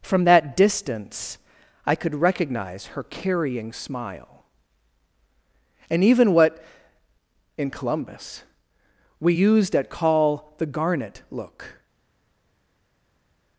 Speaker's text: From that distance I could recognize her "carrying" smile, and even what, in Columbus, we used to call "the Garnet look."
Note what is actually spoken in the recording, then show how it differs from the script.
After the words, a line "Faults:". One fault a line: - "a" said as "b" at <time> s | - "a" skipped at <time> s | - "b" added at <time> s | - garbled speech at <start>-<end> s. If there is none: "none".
From that distance I could recognize her "carrying" smile, and even what, in Columbus, we used at call "the Garnet look."
Faults:
- "to" said as "at" at 9.7 s